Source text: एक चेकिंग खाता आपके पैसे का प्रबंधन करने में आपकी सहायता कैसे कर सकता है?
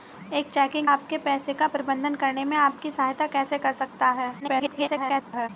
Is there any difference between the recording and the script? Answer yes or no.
yes